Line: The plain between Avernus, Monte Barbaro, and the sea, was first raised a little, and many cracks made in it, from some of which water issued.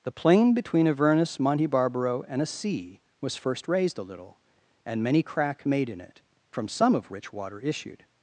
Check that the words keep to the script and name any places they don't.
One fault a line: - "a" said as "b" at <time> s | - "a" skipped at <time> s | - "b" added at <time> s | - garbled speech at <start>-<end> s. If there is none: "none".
- "the" said as "a" at 2.4 s
- "cracks" said as "crack" at 5.2 s